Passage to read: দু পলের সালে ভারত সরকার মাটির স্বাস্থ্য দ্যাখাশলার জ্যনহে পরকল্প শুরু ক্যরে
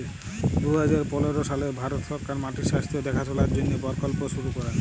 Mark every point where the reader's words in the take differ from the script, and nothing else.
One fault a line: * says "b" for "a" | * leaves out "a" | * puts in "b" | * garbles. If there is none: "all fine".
* puts in "হাজার"